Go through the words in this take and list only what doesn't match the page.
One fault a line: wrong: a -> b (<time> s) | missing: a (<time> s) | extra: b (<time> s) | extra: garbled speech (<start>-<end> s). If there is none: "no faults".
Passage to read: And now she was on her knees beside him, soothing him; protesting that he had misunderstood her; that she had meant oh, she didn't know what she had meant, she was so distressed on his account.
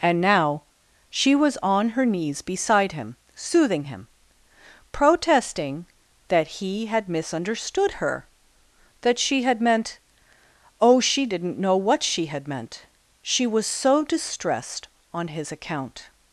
no faults